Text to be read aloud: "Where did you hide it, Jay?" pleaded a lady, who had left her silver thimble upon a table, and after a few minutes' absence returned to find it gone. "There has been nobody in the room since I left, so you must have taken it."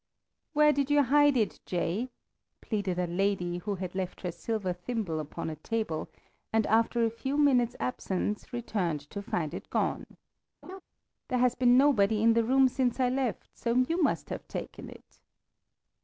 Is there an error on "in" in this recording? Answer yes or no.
no